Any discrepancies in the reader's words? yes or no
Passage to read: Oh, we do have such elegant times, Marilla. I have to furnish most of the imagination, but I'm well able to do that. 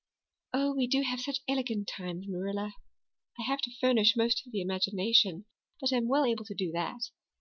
no